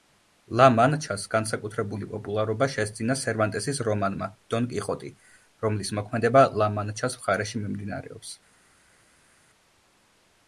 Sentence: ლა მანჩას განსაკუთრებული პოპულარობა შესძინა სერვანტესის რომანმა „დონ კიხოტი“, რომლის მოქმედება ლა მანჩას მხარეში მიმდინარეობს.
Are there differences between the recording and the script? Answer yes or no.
no